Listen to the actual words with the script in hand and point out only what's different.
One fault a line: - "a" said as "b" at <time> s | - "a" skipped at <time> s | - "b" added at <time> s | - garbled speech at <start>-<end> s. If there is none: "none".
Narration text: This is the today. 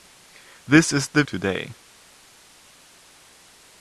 none